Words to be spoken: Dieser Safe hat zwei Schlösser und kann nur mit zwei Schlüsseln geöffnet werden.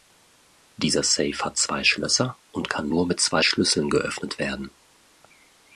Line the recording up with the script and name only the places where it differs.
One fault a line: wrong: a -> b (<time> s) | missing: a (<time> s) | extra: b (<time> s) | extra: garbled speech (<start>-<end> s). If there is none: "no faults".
no faults